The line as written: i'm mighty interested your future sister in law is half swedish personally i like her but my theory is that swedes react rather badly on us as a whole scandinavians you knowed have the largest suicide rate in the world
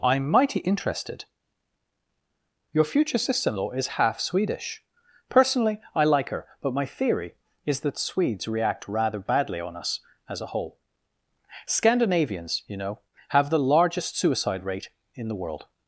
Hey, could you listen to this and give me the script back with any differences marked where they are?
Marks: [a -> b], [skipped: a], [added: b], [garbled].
i'm mighty interested your future sister in law is half swedish personally i like her but my theory is that swedes react rather badly on us as a whole scandinavians you [knowed -> know] have the largest suicide rate in the world